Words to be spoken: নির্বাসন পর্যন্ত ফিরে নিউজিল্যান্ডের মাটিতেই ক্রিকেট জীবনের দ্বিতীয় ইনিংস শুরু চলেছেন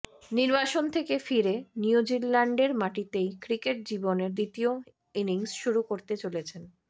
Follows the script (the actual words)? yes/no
no